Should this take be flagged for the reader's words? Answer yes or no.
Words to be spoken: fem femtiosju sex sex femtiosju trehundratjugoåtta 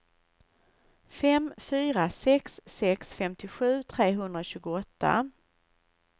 yes